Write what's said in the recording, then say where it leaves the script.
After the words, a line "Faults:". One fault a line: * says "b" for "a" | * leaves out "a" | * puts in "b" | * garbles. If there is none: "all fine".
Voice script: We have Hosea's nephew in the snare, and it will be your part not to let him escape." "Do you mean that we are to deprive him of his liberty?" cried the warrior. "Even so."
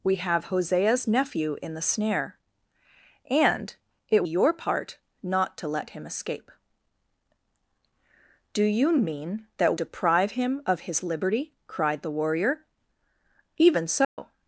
We have Hosea's nephew in the snare, and it your part not to let him escape." "Do you mean that deprive him of his liberty?" cried the warrior. "Even so."
Faults:
* leaves out "will be"
* leaves out "we are to"